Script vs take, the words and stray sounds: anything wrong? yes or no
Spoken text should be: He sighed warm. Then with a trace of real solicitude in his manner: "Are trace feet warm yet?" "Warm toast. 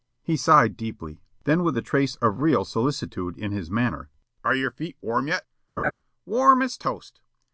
yes